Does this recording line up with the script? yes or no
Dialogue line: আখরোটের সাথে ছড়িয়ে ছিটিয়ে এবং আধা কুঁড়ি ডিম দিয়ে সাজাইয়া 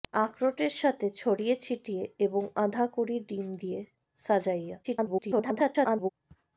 no